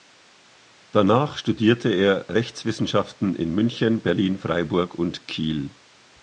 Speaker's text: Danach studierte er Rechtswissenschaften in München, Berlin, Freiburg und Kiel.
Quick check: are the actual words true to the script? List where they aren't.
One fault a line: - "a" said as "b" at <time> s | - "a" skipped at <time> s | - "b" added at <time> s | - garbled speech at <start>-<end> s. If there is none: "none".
none